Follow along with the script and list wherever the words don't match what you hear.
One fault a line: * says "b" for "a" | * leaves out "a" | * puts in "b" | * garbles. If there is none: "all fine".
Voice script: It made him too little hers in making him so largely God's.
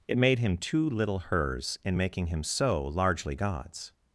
all fine